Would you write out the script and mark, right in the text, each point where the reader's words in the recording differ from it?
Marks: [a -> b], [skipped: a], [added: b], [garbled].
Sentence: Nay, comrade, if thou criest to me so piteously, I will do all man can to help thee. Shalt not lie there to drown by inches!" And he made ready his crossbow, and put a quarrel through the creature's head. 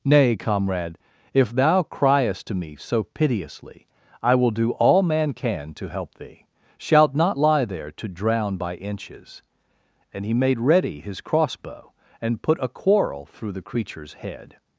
Nay, comrade, if thou criest to me so piteously, I will do all man can to help thee. Shalt not lie there to drown by inches!" And he made ready his crossbow, and put a quarrel through the creature's head.